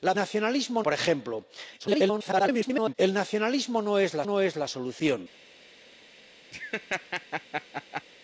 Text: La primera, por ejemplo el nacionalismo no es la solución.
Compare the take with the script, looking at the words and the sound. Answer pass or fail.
fail